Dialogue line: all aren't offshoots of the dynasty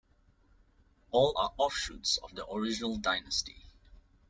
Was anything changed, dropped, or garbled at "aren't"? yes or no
yes